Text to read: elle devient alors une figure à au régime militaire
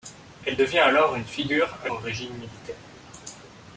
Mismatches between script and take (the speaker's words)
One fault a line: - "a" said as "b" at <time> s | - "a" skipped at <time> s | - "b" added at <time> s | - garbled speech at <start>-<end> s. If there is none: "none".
none